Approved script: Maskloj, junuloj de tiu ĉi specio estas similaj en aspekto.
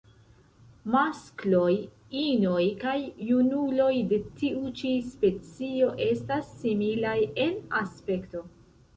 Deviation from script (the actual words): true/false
true